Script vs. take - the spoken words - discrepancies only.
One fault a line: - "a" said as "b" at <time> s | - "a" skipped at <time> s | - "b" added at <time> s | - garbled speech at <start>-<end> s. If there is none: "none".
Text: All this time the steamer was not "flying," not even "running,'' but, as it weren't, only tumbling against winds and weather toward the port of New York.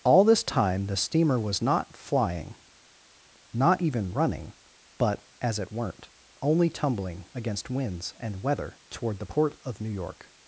none